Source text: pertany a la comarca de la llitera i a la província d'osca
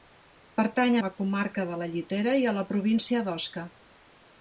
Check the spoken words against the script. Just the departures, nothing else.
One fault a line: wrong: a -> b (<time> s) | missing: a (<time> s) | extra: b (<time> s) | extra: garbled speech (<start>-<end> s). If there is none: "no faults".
no faults